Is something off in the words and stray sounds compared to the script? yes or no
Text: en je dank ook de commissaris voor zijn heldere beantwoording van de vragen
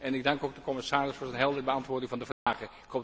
yes